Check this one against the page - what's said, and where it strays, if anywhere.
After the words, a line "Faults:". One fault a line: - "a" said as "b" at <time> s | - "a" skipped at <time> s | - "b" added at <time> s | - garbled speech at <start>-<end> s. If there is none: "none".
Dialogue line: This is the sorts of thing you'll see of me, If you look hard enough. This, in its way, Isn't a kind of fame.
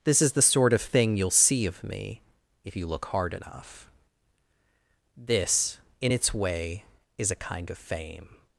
This is the sort of thing you'll see of me, If you look hard enough. This, in its way, Is a kind of fame.
Faults:
- "sorts" said as "sort" at 0.4 s
- "Isn't" said as "Is" at 7.2 s